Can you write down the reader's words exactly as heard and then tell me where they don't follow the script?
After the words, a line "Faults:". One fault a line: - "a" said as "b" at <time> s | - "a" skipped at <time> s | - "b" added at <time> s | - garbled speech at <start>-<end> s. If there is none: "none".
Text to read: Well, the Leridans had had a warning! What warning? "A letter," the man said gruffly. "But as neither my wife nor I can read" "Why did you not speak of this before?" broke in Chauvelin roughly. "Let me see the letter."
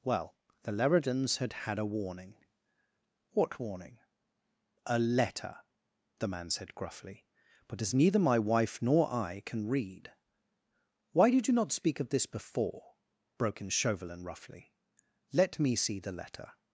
Well, the Leridans had had a warning! What warning? "A letter," the man said gruffly. "But as neither my wife nor I can read" "Why did you not speak of this before?" broke in Chauvelin roughly. "Let me see the letter."
Faults:
none